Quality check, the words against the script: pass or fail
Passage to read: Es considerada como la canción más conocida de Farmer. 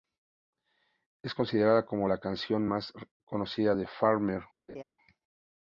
pass